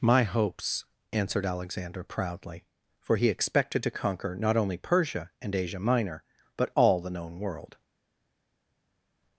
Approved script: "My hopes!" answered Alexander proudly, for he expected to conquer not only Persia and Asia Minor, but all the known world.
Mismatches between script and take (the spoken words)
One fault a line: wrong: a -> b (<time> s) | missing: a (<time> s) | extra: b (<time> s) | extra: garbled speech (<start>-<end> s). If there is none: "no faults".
no faults